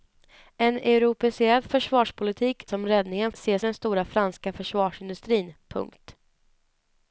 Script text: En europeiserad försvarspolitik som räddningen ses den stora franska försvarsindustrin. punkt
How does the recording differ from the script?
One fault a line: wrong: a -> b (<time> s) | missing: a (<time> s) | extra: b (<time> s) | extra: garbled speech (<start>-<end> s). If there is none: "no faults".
no faults